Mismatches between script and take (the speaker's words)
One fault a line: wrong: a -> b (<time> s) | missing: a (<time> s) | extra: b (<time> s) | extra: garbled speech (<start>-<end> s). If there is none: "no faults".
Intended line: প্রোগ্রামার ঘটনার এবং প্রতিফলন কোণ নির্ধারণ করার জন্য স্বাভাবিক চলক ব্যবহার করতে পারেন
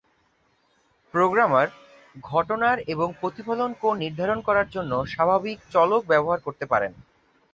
no faults